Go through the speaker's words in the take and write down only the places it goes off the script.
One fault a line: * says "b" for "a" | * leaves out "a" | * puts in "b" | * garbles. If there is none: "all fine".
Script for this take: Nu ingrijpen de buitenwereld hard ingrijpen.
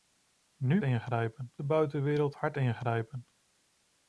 all fine